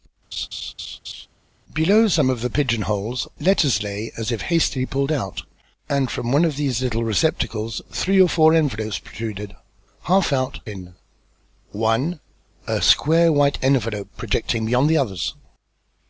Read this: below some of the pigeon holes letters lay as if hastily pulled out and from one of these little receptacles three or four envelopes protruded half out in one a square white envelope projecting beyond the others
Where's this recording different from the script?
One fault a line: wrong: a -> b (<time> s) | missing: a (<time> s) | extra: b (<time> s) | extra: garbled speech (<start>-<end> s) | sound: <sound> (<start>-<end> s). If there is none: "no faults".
sound: laugh (0.3-1.3 s)